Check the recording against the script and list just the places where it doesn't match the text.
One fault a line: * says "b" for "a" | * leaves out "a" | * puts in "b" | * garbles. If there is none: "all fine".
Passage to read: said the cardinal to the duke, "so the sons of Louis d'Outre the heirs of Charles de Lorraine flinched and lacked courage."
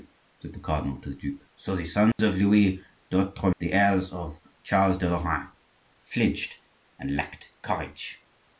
all fine